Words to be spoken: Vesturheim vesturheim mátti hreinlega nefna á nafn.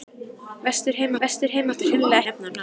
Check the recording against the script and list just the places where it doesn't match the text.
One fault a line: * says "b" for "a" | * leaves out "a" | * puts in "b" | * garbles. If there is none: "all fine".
all fine